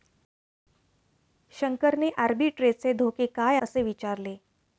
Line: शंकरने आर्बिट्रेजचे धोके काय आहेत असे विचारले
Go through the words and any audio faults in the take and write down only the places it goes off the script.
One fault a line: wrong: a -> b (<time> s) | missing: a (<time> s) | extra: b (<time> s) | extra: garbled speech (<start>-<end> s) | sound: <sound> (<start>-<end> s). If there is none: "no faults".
missing: आहेत (3.6 s)